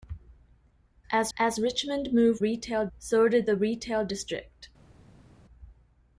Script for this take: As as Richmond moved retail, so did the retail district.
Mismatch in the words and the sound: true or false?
false